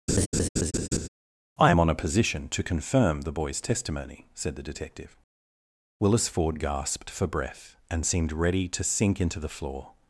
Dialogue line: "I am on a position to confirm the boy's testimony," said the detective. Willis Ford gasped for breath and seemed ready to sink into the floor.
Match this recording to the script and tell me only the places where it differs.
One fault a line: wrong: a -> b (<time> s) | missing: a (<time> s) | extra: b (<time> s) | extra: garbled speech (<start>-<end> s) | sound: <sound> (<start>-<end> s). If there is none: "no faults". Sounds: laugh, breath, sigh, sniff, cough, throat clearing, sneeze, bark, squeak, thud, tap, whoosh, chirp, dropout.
sound: laugh (0.1-1.1 s)